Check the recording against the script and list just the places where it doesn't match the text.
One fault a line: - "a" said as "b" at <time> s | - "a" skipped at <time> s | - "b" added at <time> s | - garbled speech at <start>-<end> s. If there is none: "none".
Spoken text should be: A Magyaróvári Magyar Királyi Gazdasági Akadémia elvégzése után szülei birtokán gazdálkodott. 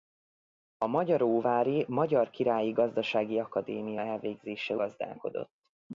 - "után szülei birtokán" skipped at 4.8 s